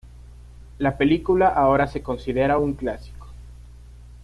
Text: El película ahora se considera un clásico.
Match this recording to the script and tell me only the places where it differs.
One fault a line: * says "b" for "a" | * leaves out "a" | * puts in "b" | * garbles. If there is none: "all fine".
* says "La" for "El"